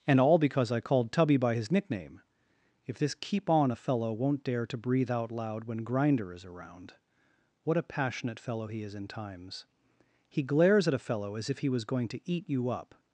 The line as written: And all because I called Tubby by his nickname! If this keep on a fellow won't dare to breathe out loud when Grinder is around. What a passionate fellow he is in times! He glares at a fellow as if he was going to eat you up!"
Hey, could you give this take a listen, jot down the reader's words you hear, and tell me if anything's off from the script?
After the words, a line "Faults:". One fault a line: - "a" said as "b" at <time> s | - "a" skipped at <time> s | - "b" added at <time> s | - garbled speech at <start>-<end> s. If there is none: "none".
And all because I called Tubby by his nickname! If this keep on a fellow won't dare to breathe out loud when Grinder is around. What a passionate fellow he is in times! He glares at a fellow as if he was going to eat you up!"
Faults:
none